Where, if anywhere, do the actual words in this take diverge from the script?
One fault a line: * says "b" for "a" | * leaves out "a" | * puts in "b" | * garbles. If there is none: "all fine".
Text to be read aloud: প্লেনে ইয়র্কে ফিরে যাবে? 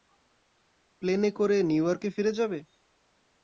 * puts in "করে নিউ"